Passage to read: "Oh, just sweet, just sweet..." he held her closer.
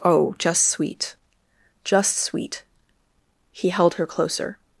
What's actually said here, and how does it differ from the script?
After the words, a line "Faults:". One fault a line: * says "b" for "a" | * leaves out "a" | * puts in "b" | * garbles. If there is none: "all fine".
"Oh, just sweet, just sweet..." he held her closer.
Faults:
all fine